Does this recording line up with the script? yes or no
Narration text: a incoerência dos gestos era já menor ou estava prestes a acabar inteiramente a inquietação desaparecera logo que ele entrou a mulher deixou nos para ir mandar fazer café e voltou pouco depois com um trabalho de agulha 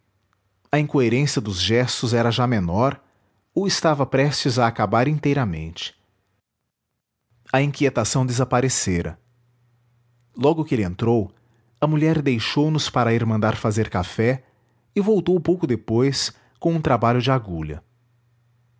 yes